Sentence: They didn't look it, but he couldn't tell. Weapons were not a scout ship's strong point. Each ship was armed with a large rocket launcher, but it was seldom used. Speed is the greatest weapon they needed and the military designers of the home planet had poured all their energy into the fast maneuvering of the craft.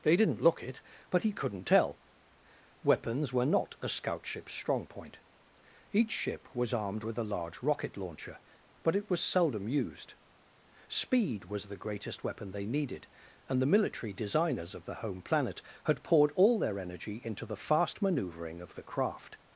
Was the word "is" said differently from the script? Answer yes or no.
yes